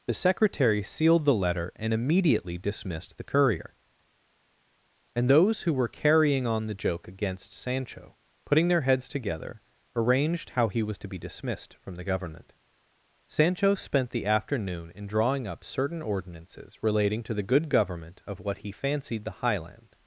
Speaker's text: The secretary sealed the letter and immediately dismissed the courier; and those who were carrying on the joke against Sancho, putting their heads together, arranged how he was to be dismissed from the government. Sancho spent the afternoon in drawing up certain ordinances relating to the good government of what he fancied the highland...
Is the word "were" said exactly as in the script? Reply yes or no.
yes